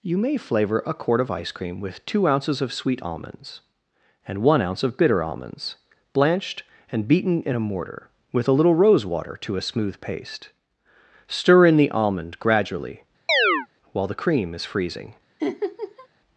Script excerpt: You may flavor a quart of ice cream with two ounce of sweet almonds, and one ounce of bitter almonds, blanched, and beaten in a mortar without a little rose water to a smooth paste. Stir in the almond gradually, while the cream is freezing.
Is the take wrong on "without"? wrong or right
wrong